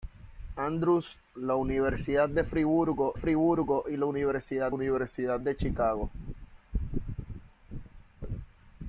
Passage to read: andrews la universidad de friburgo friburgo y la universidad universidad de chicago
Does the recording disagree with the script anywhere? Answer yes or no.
no